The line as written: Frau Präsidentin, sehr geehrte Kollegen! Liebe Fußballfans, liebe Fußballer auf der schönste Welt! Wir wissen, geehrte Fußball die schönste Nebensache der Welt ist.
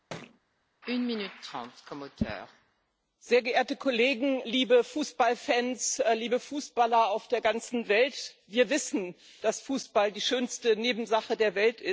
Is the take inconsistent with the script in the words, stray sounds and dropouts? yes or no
yes